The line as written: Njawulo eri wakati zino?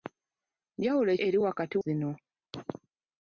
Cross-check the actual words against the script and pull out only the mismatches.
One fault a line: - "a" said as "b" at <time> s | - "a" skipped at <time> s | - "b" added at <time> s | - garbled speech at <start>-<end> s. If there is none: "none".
none